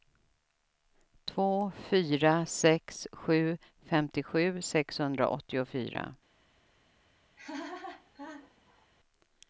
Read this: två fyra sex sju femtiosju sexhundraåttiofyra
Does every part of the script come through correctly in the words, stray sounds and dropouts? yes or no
no